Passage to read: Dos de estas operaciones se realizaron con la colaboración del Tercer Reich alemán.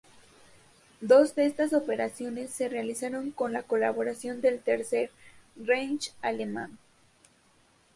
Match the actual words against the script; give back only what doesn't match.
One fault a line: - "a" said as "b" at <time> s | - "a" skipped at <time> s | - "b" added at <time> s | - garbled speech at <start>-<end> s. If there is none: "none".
none